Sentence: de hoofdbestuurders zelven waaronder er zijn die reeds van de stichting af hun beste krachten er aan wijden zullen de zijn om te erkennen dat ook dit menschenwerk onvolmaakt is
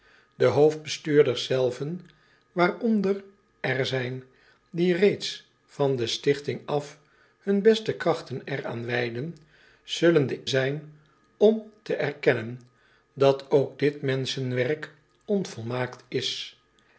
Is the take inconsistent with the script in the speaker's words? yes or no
no